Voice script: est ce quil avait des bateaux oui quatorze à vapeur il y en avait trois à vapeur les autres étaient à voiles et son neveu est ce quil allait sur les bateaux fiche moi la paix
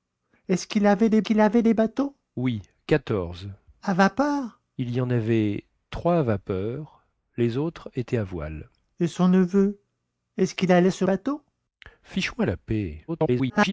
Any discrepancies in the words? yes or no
yes